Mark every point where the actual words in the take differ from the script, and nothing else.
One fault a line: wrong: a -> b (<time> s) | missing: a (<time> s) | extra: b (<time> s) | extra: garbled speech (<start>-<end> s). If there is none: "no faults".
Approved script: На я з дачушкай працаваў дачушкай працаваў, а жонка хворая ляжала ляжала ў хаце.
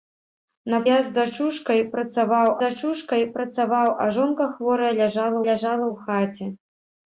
no faults